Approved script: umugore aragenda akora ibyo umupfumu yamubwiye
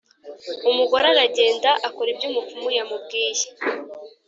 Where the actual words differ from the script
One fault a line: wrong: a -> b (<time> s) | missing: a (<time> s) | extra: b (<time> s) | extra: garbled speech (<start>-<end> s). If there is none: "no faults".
no faults